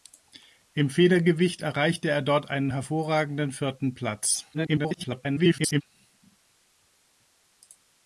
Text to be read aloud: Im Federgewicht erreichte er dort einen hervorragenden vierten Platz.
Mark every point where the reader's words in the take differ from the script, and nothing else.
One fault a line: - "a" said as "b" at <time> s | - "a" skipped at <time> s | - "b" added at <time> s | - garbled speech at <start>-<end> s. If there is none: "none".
- garbled speech at 4.5-5.8 s